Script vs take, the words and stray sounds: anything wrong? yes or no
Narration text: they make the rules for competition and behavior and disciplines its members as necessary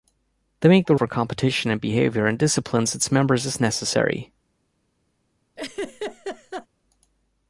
yes